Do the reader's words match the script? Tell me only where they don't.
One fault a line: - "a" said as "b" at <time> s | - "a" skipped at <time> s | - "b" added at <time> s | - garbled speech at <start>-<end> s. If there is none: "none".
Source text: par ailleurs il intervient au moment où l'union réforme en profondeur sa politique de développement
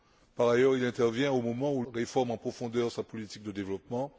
- "l'union" skipped at 1.8 s